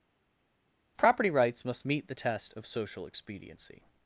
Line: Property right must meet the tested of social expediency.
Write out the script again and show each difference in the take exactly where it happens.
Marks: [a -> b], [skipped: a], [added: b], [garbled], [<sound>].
Property [right -> rights] must meet the [tested -> test] of social expediency.